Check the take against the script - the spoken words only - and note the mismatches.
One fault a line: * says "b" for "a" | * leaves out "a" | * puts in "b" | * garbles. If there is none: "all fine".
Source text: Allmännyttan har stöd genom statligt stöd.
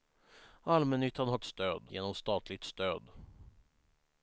all fine